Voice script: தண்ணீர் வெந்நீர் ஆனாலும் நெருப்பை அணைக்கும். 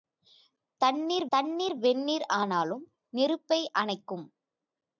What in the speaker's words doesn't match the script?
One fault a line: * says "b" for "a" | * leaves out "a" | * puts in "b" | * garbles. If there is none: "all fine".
* puts in "தண்ணீர்"